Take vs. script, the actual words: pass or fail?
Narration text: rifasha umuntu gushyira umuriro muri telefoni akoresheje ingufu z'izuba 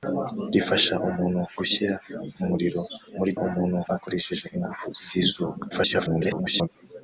fail